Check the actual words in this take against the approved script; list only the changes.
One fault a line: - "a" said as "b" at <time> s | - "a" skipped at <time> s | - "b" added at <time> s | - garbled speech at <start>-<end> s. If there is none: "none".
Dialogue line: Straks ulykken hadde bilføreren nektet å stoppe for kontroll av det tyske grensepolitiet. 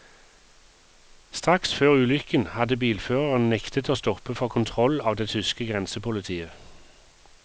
- "før" added at 1.8 s